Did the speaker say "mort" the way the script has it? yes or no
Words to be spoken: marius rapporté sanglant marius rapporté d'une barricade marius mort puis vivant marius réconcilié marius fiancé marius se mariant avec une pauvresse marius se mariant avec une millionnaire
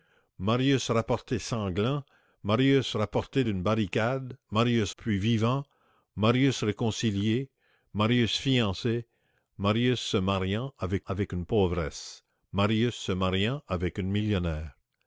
no